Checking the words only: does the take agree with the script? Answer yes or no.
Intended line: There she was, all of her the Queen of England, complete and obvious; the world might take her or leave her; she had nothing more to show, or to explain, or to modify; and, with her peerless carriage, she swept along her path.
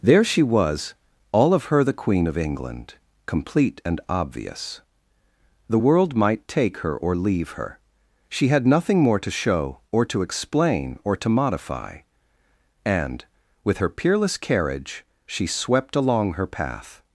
yes